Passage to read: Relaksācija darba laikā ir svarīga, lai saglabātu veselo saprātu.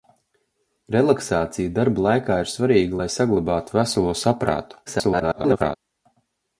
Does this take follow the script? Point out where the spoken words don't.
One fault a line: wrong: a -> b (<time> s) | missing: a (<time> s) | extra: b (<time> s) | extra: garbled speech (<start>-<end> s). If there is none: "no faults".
extra: garbled speech (4.9-5.8 s)